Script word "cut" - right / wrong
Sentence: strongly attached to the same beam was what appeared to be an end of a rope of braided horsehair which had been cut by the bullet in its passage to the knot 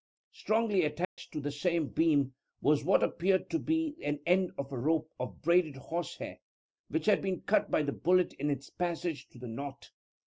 right